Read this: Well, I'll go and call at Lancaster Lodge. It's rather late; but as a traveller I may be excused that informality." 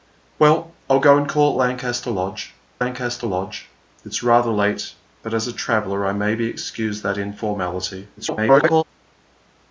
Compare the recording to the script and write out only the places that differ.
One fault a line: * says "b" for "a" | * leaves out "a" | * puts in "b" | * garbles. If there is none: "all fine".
* puts in "Lancaster Lodge"
* garbles